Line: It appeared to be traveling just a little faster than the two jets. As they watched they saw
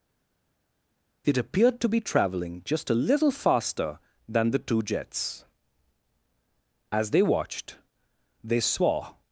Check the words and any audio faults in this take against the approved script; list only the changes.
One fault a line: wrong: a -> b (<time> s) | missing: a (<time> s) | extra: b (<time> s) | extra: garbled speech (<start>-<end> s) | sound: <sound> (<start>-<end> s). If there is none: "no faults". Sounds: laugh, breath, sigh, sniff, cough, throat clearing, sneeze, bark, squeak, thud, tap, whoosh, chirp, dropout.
no faults